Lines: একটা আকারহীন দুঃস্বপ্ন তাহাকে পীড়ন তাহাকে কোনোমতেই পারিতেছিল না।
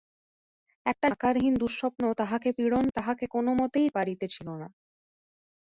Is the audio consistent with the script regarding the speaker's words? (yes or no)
yes